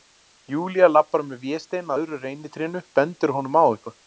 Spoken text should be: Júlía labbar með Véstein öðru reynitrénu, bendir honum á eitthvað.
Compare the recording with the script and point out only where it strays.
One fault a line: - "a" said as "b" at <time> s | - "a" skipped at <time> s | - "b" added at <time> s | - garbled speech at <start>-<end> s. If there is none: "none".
none